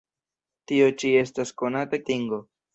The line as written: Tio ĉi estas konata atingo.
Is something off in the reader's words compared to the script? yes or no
no